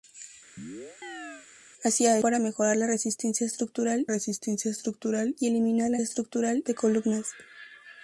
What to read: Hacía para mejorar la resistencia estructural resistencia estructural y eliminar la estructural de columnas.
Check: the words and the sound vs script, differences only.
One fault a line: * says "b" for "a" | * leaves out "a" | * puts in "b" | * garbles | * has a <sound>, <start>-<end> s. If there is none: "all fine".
* has a chirp, 0.6-1.5 s